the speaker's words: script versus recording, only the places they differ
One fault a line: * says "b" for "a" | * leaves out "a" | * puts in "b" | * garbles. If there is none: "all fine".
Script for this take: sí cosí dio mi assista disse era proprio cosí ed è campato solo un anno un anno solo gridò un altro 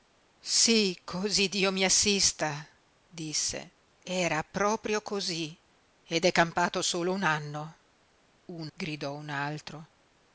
* leaves out "anno solo"